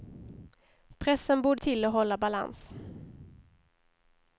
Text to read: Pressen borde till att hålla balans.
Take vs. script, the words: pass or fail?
pass